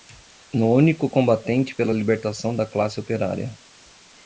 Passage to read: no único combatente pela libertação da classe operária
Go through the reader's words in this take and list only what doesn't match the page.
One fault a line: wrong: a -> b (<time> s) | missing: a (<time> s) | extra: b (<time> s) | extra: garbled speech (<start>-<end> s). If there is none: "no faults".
no faults